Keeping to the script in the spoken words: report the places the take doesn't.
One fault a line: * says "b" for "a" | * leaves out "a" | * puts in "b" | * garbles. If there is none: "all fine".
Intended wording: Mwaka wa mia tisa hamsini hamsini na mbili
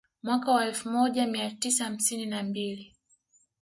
* puts in "elfu moja"
* leaves out "hamsini"